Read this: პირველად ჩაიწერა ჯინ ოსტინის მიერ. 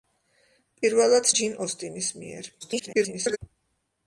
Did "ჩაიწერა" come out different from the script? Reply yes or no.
yes